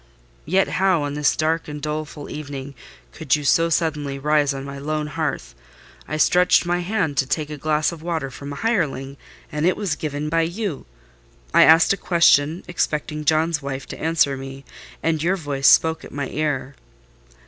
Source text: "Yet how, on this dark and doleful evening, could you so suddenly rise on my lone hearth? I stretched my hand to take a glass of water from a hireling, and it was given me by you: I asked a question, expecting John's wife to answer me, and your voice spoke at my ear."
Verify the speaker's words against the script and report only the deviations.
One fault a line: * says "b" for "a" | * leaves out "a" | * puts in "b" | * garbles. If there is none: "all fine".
* leaves out "me"